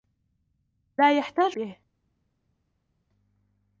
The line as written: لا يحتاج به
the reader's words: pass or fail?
pass